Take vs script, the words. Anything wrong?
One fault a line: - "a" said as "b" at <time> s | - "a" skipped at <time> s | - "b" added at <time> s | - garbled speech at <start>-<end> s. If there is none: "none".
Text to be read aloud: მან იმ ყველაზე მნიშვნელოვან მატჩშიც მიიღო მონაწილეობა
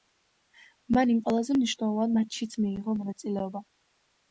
none